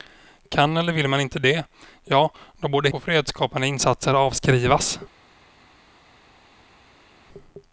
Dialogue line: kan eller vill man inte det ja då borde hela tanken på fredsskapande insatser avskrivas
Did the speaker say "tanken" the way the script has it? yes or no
no